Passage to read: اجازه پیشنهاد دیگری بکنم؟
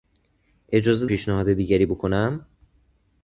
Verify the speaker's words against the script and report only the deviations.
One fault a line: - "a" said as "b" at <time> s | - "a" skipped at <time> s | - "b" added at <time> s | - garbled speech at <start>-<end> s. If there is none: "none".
none